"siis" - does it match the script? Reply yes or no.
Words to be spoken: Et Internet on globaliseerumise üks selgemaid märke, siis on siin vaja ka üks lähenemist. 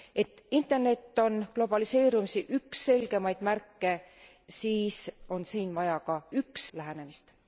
yes